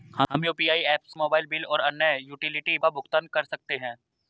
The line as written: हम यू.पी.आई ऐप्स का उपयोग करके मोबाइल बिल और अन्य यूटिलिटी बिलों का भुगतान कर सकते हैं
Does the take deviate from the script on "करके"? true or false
true